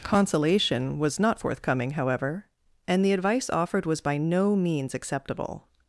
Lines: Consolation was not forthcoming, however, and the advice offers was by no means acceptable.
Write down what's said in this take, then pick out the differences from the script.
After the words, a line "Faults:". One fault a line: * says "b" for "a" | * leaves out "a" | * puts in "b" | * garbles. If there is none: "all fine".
Consolation was not forthcoming, however, and the advice offered was by no means acceptable.
Faults:
* says "offered" for "offers"